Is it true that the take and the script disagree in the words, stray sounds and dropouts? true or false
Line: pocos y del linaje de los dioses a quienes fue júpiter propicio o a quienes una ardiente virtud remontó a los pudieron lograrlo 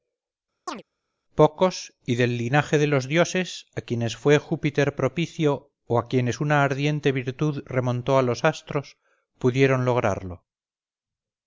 true